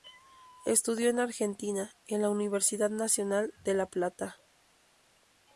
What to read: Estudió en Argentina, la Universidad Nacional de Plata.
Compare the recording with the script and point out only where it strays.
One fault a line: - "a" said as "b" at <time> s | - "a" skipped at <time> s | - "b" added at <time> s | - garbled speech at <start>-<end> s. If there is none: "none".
- "en" added at 2.1 s
- "La" added at 3.8 s